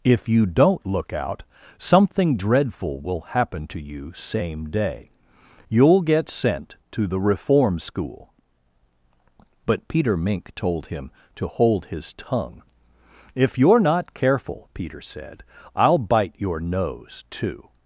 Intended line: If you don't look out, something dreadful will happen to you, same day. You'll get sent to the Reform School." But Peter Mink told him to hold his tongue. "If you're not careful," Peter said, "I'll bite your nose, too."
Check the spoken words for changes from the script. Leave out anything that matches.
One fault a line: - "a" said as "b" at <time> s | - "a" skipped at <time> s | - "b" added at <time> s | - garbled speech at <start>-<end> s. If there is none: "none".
none